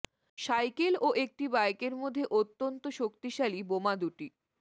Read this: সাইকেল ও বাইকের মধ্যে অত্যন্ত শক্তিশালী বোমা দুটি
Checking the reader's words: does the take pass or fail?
fail